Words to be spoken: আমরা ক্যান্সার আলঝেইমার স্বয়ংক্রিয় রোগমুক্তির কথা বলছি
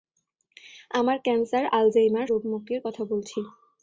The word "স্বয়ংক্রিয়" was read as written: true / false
false